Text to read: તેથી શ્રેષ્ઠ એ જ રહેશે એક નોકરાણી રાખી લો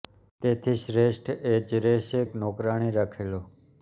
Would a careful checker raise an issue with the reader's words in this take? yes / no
no